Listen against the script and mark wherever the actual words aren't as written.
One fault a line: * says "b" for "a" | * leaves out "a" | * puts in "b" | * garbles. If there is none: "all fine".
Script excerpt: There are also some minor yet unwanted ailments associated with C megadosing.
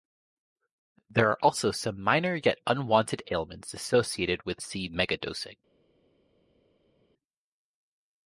all fine